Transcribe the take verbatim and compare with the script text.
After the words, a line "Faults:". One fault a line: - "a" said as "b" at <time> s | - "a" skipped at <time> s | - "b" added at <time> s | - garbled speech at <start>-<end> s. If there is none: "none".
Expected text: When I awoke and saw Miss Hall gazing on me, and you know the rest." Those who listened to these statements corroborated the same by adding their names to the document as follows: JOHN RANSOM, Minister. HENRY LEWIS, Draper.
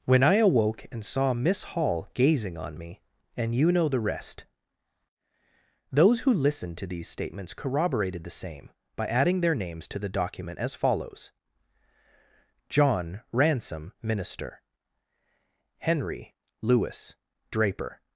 When I awoke and saw Miss Hall gazing on me, and you know the rest." Those who listened to these statements corroborated the same by adding their names to the document as follows: JOHN RANSOM, Minister. HENRY LEWIS, Draper.
Faults:
none